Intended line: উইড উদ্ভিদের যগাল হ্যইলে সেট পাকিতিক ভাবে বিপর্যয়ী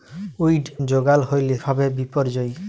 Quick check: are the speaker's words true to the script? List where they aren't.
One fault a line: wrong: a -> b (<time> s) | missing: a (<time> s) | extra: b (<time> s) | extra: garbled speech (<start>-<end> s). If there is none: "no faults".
missing: উদ্ভিদের (0.7 s)
missing: সেট পাকিতিক (1.6 s)